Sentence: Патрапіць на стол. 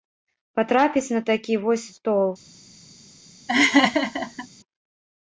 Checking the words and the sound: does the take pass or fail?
fail